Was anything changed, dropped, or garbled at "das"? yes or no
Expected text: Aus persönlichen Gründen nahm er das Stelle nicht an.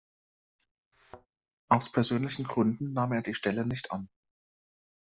yes